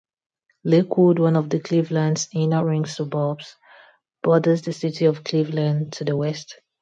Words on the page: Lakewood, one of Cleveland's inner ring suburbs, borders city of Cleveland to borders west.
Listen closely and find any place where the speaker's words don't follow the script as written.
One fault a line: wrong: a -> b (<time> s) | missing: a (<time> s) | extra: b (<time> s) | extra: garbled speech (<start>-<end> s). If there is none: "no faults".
extra: the (4.6 s)
wrong: borders -> the (6.0 s)